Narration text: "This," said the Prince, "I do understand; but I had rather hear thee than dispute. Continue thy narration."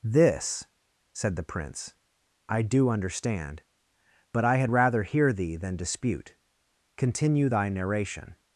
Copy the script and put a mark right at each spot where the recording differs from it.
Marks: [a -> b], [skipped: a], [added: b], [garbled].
"This," said the Prince, "I do understand; but I had rather hear thee than dispute. Continue thy narration."